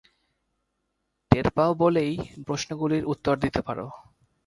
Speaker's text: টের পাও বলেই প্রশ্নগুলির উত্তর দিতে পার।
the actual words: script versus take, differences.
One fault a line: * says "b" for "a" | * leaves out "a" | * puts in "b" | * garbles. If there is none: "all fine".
all fine